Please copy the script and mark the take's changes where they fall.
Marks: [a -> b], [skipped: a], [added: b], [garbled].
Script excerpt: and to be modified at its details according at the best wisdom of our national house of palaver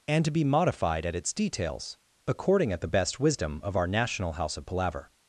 and to be modified at its details according at the best wisdom of our national house of palaver